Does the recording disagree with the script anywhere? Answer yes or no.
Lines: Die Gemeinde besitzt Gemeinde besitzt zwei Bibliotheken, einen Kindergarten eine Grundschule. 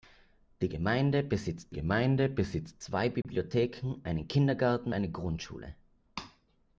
no